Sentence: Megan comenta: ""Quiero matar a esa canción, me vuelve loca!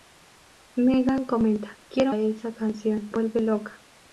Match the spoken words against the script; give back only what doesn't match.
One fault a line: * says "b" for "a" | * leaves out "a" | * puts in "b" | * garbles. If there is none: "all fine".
* leaves out "matar"
* leaves out "me"